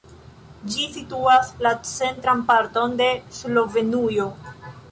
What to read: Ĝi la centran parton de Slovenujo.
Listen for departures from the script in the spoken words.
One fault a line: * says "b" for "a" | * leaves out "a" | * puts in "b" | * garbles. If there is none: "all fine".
* puts in "situas"